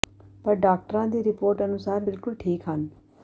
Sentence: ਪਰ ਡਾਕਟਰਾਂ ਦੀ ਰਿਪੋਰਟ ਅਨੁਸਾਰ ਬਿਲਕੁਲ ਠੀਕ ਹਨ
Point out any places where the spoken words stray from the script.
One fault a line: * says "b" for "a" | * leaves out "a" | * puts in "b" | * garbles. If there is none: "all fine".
all fine